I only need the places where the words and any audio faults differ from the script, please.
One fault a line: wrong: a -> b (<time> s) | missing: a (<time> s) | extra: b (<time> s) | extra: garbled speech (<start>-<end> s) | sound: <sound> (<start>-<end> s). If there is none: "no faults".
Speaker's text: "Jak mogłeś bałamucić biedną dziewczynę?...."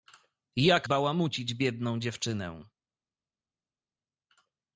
missing: mogłeś (0.9 s)